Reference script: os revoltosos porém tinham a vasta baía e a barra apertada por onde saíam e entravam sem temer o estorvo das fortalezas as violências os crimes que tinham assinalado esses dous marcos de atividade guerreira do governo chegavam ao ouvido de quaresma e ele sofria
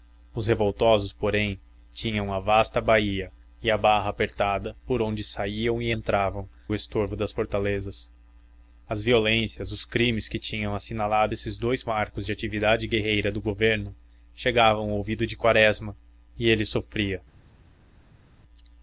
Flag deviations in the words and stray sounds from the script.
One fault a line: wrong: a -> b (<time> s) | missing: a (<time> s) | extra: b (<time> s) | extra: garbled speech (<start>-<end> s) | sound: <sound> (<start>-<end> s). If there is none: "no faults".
missing: sem temer (6.5 s)